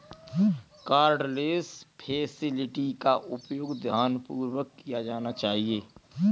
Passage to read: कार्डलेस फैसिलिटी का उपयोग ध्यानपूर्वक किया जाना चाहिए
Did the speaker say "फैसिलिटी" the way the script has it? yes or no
yes